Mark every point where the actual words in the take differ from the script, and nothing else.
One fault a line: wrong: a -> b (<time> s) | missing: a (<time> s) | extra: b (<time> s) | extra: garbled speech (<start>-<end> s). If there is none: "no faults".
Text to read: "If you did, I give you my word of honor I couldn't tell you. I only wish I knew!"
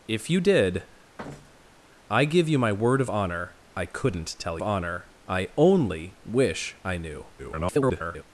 wrong: you -> honor (4.6 s)
extra: garbled speech (7.4-8.2 s)